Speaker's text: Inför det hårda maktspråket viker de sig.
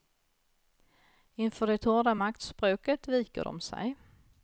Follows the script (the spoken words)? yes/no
yes